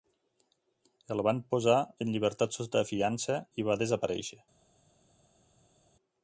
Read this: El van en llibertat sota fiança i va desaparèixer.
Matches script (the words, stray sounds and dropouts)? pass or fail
fail